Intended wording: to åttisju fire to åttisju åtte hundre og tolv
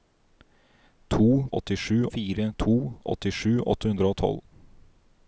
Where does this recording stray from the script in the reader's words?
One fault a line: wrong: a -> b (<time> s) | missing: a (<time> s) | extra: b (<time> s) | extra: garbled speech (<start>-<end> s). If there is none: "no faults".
no faults